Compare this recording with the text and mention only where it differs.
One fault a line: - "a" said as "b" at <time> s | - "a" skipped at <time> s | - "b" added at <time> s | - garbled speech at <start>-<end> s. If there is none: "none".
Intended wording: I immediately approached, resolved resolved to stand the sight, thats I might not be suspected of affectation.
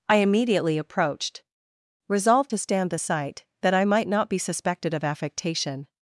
- "resolved" skipped at 2.5 s
- "thats" said as "that" at 3.6 s